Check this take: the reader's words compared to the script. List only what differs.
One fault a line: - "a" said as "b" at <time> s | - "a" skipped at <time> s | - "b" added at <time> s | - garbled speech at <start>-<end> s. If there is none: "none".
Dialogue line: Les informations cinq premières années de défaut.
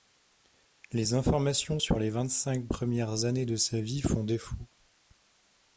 - "sur les vingt" added at 1.8 s
- "sa vie font" added at 3.6 s